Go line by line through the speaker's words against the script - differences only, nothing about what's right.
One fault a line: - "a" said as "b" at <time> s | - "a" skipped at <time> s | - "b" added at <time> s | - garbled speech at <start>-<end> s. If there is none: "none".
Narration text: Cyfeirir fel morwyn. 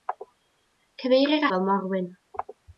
none